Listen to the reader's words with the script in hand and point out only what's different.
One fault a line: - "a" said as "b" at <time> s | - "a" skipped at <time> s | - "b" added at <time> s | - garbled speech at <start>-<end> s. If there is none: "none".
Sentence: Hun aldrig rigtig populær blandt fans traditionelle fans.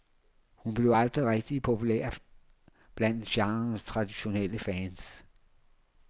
- "blev" added at 0.7 s
- "fans" said as "genrens" at 3.3 s